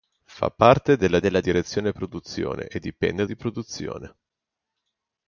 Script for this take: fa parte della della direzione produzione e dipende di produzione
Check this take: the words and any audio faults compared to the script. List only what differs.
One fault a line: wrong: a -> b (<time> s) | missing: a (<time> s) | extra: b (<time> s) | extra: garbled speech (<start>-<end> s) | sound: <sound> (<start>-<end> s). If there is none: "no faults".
no faults